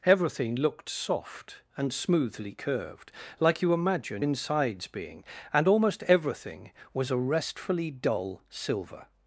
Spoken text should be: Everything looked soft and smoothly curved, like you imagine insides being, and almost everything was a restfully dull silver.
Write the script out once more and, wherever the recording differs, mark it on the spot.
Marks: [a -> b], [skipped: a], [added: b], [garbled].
Everything looked soft and smoothly curved, like you imagine insides being, and almost everything was a restfully dull silver.